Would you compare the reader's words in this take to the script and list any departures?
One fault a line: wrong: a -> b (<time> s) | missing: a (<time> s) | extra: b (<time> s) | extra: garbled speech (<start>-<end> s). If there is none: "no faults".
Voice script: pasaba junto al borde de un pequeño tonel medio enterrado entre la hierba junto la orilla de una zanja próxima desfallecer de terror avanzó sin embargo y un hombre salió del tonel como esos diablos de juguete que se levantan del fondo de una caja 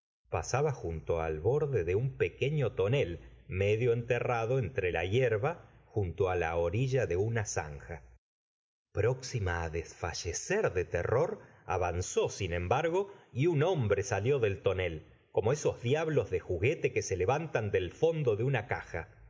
no faults